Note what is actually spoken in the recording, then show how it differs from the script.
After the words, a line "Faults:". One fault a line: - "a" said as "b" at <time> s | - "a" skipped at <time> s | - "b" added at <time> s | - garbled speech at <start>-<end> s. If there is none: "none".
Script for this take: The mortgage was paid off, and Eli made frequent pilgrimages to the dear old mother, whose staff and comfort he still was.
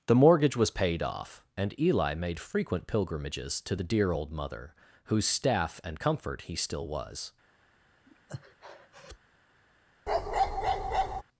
The mortgage was paid off, and Eli made frequent pilgrimages to the dear old mother, whose staff and comfort he still was.
Faults:
none